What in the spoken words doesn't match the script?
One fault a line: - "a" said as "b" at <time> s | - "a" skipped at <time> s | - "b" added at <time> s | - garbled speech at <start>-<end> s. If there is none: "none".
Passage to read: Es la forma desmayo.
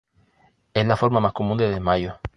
- "más común de" added at 1.2 s